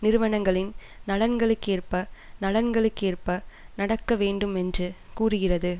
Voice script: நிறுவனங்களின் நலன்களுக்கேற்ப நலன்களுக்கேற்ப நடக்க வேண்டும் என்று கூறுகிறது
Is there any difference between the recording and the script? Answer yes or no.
no